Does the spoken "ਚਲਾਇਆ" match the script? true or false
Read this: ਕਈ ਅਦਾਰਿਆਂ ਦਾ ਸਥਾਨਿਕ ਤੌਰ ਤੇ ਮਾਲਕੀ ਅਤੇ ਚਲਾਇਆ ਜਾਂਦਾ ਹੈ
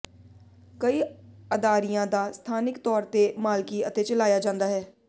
true